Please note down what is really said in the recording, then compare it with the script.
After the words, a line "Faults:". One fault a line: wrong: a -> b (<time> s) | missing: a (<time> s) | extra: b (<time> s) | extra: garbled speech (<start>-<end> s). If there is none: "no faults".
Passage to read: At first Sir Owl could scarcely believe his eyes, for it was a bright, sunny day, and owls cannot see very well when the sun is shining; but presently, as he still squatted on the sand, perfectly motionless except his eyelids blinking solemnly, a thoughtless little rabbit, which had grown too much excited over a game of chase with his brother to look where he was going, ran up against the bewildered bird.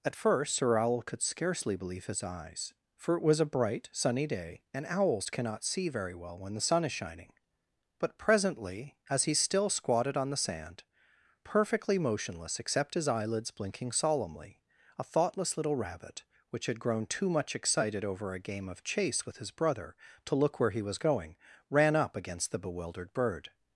At first Sir Owl could scarcely believe his eyes, for it was a bright, sunny day, and owls cannot see very well when the sun is shining; but presently, as he still squatted on the sand, perfectly motionless except his eyelids blinking solemnly, a thoughtless little rabbit, which had grown too much excited over a game of chase with his brother to look where he was going, ran up against the bewildered bird.
Faults:
no faults